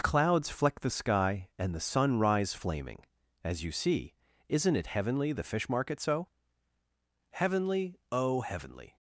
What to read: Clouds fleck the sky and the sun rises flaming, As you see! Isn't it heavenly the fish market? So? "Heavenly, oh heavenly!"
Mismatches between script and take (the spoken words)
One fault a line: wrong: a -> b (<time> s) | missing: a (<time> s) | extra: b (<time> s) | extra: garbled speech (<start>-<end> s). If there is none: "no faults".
wrong: rises -> rise (2.2 s)